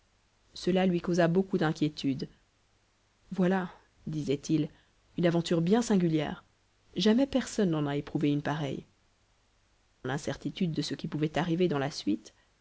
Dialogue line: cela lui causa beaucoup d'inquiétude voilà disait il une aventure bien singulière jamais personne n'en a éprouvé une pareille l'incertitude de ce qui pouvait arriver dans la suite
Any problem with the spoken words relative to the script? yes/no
no